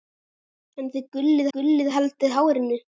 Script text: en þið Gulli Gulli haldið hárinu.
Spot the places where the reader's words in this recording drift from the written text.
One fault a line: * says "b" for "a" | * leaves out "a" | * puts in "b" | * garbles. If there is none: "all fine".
all fine